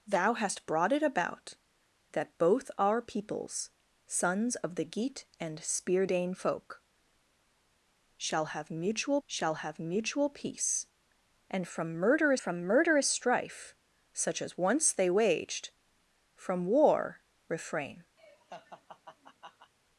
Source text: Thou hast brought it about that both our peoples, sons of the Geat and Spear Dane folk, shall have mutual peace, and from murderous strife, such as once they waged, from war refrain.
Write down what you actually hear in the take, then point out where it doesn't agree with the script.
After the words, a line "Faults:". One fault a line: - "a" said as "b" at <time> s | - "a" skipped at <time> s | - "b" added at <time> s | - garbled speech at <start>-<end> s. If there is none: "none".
Thou hast brought it about that both our peoples, sons of the Geat and Spear Dane folk, shall have mutual shall have mutual peace, and from murderous from murderous strife, such as once they waged, from war refrain.
Faults:
- "shall have mutual" added at 9.3 s
- "from murderous" added at 12.4 s